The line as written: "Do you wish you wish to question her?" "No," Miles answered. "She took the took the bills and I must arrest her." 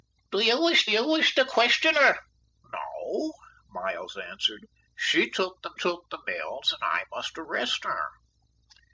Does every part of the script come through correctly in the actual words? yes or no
yes